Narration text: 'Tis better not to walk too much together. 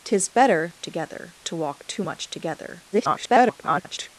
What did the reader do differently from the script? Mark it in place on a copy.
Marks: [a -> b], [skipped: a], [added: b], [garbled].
'Tis better [not -> together] to walk too much together. [garbled]